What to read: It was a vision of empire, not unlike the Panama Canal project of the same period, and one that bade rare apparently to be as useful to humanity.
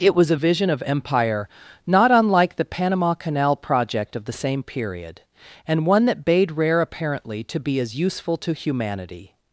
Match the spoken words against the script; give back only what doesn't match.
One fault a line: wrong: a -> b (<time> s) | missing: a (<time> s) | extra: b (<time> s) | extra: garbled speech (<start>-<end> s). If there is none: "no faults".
no faults